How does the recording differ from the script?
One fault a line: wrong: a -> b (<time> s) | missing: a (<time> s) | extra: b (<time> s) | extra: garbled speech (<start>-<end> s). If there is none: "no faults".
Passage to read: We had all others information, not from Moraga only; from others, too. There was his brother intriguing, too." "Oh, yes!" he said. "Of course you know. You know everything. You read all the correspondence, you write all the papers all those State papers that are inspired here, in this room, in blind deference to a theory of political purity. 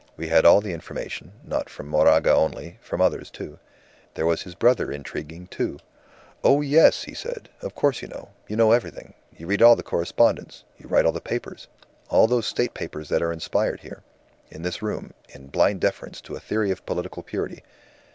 wrong: others -> the (0.6 s)